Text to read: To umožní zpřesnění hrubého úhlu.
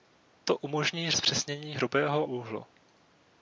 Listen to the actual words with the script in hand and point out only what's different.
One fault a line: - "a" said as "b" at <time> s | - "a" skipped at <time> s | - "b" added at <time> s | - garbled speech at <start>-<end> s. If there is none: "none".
none